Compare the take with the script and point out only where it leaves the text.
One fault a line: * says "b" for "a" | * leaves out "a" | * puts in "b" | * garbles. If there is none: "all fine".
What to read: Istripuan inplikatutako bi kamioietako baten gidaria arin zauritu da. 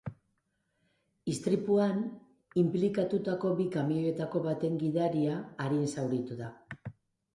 all fine